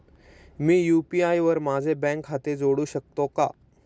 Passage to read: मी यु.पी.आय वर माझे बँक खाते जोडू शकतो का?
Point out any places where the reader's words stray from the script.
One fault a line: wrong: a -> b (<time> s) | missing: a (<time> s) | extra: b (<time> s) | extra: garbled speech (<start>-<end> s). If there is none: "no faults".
no faults